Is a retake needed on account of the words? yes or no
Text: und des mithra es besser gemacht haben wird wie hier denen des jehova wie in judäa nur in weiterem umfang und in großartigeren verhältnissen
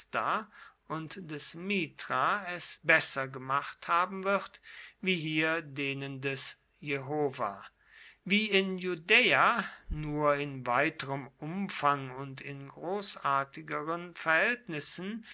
no